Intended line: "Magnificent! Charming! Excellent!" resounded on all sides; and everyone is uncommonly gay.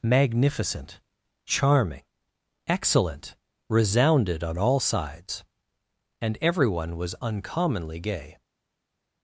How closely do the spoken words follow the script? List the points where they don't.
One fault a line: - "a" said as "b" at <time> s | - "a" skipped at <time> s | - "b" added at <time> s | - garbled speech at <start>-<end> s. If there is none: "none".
- "is" said as "was" at 7.0 s